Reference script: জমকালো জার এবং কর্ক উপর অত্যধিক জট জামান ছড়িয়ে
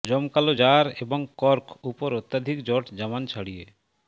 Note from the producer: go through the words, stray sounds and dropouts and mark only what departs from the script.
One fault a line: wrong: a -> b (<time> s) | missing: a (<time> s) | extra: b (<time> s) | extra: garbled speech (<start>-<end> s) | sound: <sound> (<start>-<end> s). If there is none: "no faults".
no faults